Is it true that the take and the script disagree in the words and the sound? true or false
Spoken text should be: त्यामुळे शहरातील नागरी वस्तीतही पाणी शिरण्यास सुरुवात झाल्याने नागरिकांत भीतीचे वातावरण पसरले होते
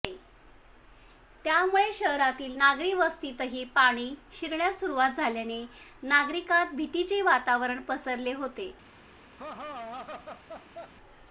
true